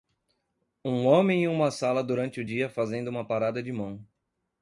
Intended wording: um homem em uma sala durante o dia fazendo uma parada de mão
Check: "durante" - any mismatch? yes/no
no